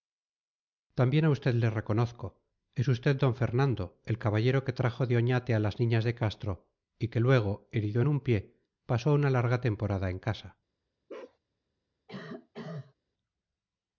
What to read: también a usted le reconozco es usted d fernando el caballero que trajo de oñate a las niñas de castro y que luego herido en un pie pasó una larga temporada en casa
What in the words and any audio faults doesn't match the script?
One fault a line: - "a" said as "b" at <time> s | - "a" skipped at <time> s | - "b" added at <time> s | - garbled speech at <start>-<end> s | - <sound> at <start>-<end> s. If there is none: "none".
- bark at 11.1-11.4 s
- cough at 12.1-12.9 s